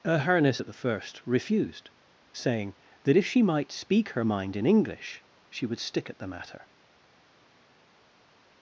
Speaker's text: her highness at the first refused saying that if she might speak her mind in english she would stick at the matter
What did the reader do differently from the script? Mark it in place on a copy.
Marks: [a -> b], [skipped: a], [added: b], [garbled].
her highness at the first refused saying that if she might speak her mind in english she would stick at the matter